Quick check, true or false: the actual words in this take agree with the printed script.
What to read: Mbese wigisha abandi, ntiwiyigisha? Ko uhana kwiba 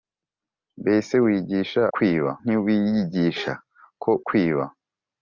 false